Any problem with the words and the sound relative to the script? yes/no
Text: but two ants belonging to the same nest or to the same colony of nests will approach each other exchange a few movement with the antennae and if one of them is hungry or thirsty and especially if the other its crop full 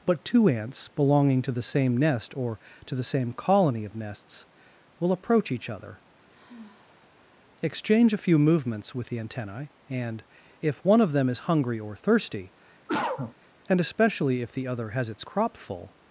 yes